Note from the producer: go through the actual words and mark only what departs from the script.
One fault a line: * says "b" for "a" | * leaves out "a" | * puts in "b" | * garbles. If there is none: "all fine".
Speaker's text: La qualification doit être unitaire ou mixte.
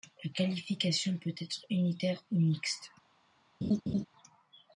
* says "peut" for "doit"